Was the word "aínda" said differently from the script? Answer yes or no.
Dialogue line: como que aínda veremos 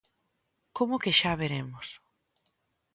yes